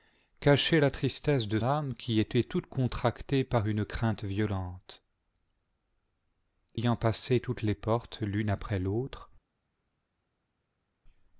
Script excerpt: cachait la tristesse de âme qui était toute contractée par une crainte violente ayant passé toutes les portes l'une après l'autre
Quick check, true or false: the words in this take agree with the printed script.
true